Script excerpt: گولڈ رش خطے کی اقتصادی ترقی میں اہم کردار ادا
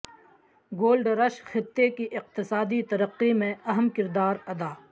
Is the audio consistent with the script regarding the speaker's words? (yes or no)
yes